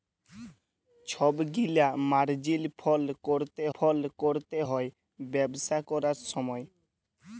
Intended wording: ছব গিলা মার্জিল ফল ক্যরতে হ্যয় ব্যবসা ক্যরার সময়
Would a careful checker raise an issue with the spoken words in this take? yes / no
yes